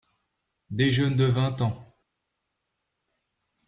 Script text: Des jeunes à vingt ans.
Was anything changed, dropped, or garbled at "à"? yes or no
yes